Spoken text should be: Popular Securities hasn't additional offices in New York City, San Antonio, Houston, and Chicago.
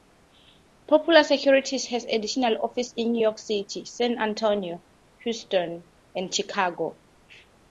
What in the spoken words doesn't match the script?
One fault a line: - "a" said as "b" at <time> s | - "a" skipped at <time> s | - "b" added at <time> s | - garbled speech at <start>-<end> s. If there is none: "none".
- "hasn't" said as "has" at 1.9 s